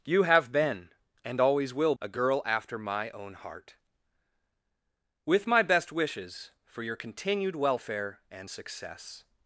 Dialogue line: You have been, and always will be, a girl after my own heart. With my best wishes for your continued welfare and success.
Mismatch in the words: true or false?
true